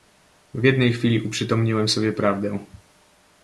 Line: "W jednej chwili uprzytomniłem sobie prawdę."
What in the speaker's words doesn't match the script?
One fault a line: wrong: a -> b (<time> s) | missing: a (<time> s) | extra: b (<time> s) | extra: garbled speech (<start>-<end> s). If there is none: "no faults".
no faults